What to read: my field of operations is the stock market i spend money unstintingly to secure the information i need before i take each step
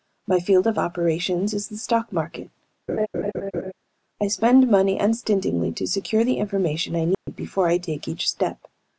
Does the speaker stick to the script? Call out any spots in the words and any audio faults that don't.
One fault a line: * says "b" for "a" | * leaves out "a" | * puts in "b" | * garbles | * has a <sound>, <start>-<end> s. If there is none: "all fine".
* has a laugh, 2.9-3.7 s
* has a dropout, 7.1-7.3 s